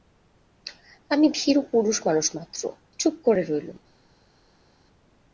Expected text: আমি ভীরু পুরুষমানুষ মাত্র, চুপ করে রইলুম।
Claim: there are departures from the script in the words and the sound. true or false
false